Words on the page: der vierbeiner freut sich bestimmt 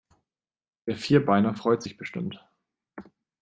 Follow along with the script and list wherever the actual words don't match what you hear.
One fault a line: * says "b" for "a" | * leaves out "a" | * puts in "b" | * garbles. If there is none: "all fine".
all fine